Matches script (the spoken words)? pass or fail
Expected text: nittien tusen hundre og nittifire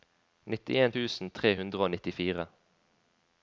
fail